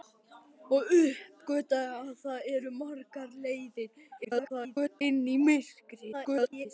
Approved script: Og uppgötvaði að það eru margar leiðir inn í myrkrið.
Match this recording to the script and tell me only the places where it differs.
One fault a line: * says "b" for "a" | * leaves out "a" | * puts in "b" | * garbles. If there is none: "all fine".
* garbles
* garbles